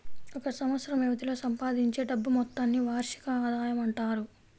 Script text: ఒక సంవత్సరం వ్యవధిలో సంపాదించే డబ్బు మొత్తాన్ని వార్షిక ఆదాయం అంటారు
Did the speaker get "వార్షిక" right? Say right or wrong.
right